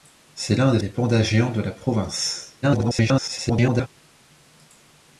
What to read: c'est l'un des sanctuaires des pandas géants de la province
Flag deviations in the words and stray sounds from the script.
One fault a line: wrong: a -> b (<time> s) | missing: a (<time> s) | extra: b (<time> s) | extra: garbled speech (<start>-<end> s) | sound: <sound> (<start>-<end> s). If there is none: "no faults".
missing: sanctuaires (0.8 s)
extra: garbled speech (2.6-3.9 s)